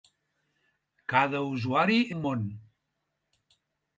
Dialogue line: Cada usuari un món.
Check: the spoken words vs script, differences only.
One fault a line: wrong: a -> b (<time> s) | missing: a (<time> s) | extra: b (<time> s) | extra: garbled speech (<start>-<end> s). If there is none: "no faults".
no faults